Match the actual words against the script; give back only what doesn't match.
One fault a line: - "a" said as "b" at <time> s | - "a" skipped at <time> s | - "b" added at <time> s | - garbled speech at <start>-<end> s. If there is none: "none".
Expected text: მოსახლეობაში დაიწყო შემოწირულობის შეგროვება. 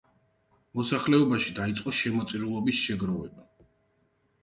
none